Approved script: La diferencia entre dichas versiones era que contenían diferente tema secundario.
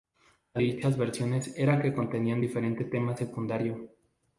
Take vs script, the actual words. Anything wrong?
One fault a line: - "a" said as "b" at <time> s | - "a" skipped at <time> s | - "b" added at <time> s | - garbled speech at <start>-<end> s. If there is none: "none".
- "diferencia entre" skipped at 0.6 s